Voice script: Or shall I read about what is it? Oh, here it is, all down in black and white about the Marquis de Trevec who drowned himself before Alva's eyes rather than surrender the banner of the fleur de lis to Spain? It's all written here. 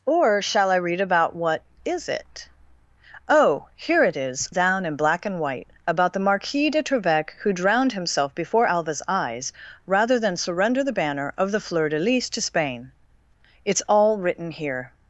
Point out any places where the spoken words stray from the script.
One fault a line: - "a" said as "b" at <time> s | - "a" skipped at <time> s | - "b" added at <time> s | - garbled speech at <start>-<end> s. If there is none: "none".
- "all" skipped at 4.5 s